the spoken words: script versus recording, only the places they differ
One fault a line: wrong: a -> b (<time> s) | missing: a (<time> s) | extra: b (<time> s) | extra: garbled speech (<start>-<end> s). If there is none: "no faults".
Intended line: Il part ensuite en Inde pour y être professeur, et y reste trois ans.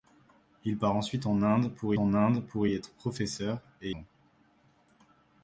extra: en Inde pour (2.0 s)
missing: y reste trois (3.9 s)